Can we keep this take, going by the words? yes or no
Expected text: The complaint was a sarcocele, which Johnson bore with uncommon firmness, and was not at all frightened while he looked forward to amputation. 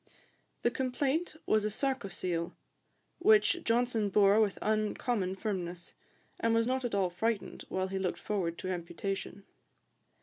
yes